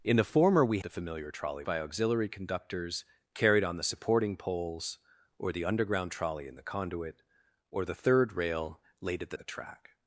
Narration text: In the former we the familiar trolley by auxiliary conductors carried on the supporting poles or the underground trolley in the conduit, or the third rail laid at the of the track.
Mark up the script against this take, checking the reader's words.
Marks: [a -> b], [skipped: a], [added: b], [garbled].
In the former we the familiar trolley by auxiliary conductors carried on the supporting poles or the underground trolley in the conduit, or the third rail laid at the of the track.